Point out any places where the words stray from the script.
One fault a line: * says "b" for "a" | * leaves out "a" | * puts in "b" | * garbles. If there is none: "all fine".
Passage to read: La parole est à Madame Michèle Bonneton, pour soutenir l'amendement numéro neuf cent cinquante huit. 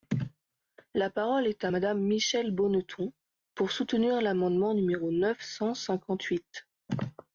all fine